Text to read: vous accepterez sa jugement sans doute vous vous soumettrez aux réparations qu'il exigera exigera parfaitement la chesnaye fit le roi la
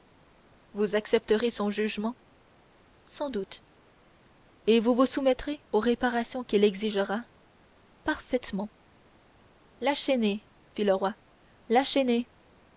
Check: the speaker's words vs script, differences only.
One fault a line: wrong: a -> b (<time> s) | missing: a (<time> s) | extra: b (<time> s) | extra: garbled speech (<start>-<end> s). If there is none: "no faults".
wrong: sa -> son (1.5 s)
extra: et (4.7 s)
missing: exigera (7.2 s)